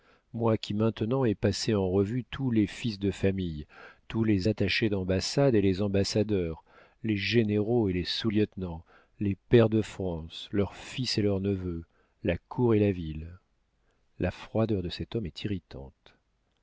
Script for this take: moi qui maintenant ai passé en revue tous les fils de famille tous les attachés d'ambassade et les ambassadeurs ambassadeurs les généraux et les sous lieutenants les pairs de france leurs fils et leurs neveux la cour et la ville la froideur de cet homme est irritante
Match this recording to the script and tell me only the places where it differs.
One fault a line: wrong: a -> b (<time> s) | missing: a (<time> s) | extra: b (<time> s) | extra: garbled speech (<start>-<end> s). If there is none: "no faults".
missing: ambassadeurs (6.6 s)